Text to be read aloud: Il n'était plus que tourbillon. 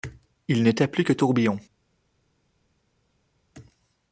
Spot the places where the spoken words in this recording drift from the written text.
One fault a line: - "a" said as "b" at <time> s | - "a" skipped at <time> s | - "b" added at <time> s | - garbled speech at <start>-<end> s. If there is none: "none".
none